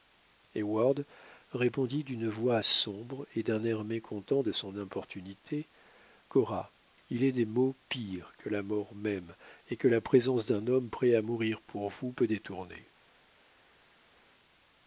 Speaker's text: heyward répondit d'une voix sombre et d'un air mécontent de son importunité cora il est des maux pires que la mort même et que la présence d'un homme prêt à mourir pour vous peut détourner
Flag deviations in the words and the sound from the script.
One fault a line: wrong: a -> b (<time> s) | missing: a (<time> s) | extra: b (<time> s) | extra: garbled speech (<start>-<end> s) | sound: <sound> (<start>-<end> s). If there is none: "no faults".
no faults